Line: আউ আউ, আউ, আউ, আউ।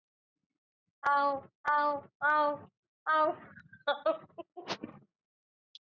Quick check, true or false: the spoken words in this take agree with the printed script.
true